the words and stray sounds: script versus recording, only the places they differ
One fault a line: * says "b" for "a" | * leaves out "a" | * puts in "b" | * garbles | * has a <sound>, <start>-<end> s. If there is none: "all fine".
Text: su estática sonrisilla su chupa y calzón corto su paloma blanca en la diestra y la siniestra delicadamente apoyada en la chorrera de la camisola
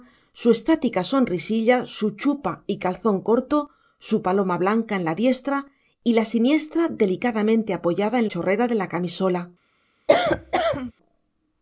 * leaves out "la"
* has a cough, 10.1-10.9 s